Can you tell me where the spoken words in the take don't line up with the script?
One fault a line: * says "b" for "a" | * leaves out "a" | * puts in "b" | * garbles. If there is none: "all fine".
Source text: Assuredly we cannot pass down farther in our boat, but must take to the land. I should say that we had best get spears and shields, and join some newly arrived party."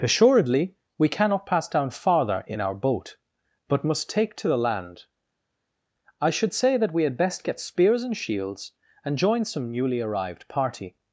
all fine